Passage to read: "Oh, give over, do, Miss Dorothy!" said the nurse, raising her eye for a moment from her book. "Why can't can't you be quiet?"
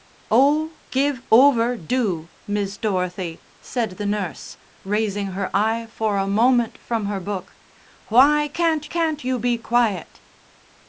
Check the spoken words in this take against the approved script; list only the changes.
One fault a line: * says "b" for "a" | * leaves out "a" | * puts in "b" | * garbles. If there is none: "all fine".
all fine